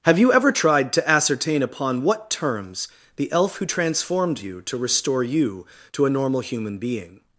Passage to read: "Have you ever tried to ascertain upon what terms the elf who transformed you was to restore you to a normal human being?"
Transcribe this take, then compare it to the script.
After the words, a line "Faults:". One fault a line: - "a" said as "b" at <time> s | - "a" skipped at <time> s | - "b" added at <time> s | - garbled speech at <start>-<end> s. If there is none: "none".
"Have you ever tried to ascertain upon what terms the elf who transformed you to restore you to a normal human being?"
Faults:
- "was" skipped at 4.6 s